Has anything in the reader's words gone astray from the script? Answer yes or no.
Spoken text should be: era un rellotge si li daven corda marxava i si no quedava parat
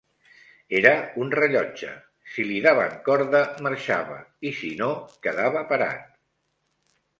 no